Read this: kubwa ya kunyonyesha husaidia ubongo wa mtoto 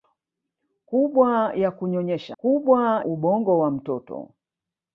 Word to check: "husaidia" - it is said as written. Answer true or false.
false